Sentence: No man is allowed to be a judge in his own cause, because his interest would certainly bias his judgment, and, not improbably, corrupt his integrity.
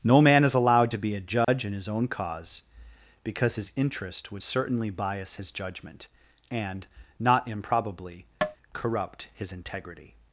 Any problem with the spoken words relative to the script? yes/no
no